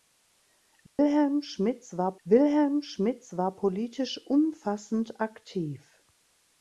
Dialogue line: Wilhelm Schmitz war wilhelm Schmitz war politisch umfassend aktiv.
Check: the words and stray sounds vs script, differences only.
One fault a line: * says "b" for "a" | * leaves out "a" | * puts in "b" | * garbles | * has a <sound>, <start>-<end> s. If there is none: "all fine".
* has a dropout, 0.9-1.0 s